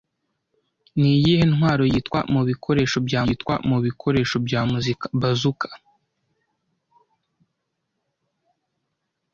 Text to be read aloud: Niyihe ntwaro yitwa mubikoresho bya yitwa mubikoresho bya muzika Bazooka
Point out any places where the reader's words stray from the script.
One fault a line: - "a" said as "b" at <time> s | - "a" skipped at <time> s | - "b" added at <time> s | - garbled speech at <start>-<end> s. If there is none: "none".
none